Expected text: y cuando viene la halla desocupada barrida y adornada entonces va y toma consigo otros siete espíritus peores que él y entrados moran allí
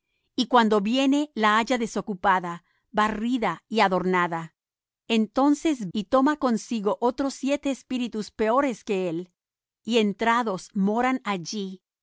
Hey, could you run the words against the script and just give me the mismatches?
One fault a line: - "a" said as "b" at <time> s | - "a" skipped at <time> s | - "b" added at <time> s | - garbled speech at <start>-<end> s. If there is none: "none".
- "va" skipped at 5.9 s